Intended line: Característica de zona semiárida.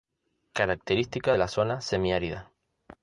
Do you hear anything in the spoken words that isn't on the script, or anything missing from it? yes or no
yes